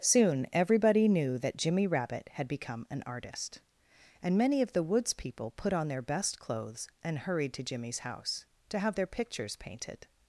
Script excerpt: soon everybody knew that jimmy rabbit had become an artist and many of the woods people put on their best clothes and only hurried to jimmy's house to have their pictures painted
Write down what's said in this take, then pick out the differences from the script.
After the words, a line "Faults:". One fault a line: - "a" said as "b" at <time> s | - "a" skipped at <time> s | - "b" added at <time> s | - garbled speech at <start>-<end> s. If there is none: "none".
soon everybody knew that jimmy rabbit had become an artist and many of the woods people put on their best clothes and hurried to jimmy's house to have their pictures painted
Faults:
- "only" skipped at 7.2 s